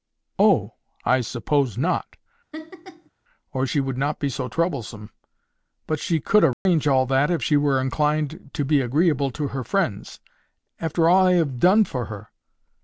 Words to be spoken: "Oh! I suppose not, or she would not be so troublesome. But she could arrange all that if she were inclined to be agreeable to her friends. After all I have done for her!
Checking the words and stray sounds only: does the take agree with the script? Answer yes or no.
no